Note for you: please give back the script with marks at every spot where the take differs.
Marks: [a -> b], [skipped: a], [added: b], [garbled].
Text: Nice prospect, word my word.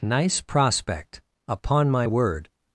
Nice prospect, [word -> upon] my word.